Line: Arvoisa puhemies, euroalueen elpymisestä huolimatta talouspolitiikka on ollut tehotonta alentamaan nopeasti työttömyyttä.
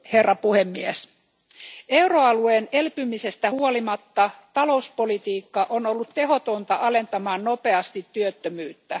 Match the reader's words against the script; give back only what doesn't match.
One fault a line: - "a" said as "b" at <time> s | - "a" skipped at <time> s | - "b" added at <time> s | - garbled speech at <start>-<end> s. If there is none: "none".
none